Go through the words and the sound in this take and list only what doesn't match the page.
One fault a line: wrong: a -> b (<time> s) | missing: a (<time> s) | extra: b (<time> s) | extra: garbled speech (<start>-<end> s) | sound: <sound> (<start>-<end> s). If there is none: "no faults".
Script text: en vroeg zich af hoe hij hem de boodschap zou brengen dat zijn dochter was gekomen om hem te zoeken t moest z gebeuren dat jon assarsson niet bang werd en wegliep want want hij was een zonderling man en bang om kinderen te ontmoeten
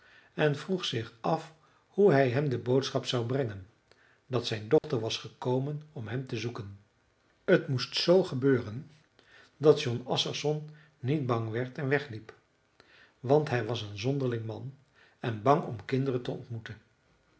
sound: dropout (4.8-4.8 s)
missing: want (13.5 s)